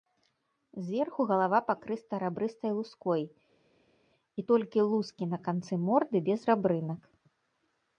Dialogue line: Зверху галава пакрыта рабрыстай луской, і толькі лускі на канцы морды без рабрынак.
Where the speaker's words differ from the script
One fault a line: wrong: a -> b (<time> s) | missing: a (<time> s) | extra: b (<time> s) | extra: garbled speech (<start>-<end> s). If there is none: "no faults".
no faults